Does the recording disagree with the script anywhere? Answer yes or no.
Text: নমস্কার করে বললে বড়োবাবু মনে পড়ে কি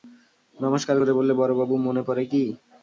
no